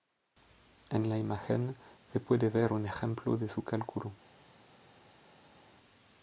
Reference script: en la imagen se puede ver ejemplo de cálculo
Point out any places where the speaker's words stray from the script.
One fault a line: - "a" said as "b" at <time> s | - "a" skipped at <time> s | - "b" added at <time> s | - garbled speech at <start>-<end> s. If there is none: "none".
- "un" added at 2.7 s
- "su" added at 3.5 s